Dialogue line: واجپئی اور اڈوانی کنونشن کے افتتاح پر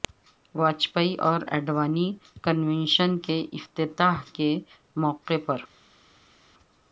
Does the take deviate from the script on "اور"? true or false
false